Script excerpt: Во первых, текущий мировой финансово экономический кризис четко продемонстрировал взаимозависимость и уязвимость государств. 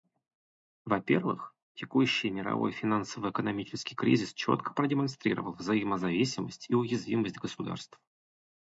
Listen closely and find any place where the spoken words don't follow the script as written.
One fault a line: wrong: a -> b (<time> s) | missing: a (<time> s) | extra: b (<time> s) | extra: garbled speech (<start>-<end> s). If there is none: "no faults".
no faults